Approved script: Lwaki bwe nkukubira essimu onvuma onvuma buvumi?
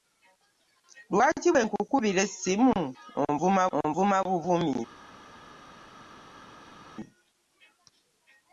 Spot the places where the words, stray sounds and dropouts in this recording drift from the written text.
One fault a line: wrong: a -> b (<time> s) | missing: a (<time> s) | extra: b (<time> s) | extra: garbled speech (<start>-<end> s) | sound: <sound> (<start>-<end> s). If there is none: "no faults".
no faults